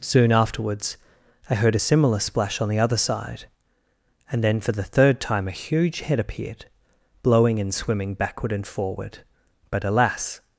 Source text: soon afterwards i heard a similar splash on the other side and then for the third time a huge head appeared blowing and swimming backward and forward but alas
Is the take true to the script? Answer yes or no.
yes